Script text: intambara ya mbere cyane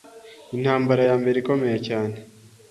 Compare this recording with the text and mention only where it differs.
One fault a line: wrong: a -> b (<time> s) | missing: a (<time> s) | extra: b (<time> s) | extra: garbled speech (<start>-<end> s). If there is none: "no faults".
extra: ikomeye (1.4 s)